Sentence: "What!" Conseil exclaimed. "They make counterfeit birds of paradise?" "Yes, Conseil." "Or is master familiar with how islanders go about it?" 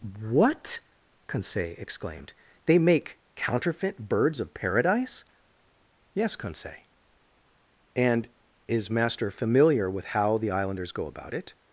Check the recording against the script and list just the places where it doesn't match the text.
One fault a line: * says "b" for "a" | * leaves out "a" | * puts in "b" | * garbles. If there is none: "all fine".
* says "And" for "Or"
* puts in "the"